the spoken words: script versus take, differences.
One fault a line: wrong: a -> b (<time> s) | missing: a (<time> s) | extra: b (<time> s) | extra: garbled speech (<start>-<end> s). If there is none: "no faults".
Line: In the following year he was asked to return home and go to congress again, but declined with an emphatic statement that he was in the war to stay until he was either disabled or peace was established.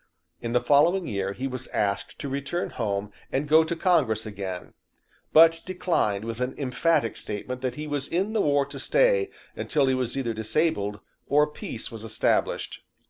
no faults